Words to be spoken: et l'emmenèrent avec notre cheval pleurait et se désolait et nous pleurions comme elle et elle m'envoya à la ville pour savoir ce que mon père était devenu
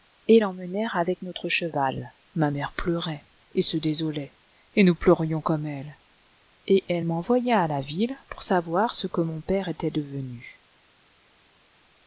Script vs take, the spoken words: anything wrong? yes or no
yes